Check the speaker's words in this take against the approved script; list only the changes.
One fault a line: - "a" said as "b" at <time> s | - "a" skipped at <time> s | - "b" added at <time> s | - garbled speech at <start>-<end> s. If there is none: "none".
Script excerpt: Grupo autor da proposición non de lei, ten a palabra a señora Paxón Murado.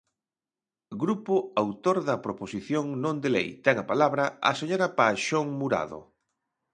none